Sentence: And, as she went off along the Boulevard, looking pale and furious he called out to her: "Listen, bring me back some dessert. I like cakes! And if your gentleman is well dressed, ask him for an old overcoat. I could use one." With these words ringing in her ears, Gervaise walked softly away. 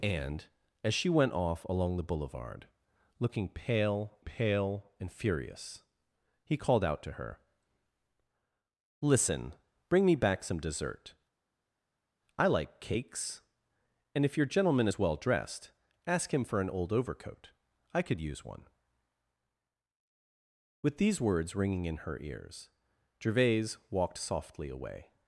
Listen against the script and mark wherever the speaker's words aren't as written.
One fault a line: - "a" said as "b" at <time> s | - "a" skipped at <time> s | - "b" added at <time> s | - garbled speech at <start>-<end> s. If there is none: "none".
- "pale" added at 4.2 s